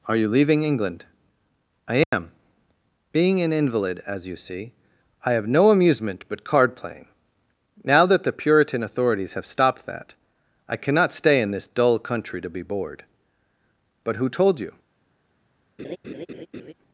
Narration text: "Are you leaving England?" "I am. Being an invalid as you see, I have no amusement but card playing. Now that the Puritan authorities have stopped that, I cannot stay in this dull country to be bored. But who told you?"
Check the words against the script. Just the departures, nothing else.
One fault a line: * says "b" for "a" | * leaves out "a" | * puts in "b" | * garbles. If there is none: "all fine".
all fine